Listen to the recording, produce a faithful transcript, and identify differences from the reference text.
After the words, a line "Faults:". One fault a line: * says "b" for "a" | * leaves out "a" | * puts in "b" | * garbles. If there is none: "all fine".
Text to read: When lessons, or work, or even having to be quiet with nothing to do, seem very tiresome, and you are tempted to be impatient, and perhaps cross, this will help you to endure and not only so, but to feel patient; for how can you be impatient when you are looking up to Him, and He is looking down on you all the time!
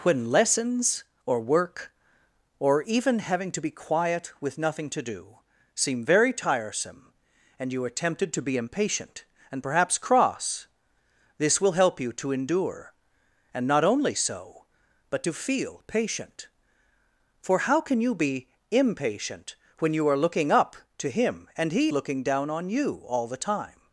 When lessons, or work, or even having to be quiet with nothing to do, seem very tiresome, and you are tempted to be impatient, and perhaps cross, this will help you to endure and not only so, but to feel patient; for how can you be impatient when you are looking up to Him, and He looking down on you all the time!
Faults:
* leaves out "is"